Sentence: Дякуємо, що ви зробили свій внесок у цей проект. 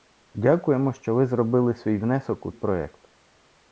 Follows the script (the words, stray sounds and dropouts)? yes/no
no